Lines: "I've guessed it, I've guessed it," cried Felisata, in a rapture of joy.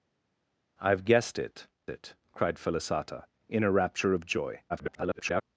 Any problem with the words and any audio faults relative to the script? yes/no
yes